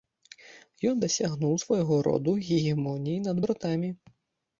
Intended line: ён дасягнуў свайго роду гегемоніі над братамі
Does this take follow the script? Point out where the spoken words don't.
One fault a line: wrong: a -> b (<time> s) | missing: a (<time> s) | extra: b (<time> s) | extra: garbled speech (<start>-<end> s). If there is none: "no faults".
no faults